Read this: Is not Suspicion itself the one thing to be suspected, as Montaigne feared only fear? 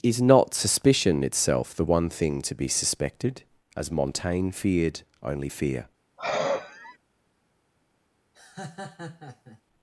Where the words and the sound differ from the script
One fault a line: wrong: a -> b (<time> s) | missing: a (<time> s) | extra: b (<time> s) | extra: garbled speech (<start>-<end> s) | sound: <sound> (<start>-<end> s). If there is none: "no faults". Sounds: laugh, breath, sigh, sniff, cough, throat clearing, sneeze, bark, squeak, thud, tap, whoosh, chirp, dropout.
sound: sigh (6.2-7.0 s)
sound: laugh (8.3-9.6 s)